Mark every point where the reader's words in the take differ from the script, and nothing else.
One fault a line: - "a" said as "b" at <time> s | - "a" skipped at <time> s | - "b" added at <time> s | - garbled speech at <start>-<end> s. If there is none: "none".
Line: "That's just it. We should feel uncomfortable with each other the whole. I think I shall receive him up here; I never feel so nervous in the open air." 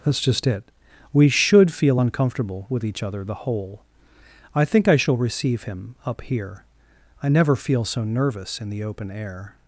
none